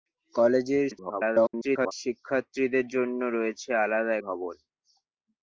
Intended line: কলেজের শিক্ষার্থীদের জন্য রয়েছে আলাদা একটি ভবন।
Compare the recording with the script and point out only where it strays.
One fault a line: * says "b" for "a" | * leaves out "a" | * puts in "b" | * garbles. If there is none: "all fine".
* garbles
* leaves out "একটি"